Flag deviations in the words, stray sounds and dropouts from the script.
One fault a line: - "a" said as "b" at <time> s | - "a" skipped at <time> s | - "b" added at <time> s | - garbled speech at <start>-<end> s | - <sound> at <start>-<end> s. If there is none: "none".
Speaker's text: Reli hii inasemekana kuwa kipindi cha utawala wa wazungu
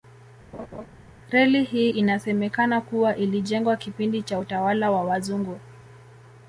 - laugh at 0.5-0.9 s
- "ilijengwa" added at 3.2 s